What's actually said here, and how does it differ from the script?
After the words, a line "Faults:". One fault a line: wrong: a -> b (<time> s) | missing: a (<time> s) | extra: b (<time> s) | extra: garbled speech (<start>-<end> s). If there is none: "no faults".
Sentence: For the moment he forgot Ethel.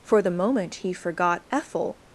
For the moment he forgot Ethel.
Faults:
no faults